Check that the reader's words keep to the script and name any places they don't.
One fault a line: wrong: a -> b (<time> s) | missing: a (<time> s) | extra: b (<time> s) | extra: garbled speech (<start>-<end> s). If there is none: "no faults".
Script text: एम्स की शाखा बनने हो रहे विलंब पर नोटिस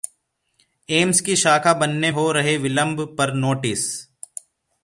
no faults